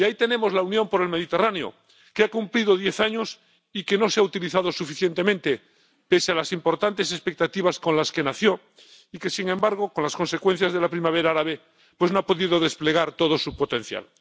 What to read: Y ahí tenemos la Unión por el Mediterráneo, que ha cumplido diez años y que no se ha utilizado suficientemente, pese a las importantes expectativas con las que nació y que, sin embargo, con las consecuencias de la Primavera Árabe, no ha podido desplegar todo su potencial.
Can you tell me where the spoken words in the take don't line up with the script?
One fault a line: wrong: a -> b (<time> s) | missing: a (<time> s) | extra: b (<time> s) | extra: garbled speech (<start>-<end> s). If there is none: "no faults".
no faults